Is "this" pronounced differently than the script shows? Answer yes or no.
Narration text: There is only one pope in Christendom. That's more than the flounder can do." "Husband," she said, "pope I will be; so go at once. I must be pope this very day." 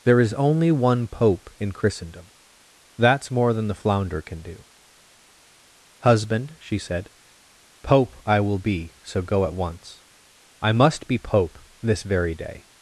no